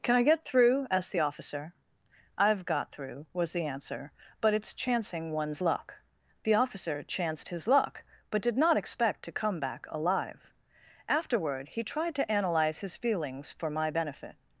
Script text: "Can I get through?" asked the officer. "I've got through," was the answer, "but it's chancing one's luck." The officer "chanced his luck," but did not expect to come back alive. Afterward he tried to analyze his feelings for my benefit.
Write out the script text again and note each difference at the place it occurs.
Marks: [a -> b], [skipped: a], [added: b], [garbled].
"Can I get through?" asked the officer. "I've got through," was the answer, "but it's chancing one's luck." The officer "chanced his luck," but did not expect to come back alive. Afterward he tried to analyze his feelings for my benefit.